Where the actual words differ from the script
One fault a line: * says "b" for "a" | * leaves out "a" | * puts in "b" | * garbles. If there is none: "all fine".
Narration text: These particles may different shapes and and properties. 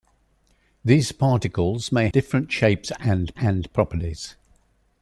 all fine